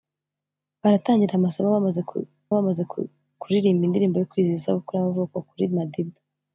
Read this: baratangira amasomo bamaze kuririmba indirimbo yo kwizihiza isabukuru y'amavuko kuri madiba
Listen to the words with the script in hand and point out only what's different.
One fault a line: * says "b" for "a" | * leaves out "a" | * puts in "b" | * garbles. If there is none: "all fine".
* puts in "bamaze"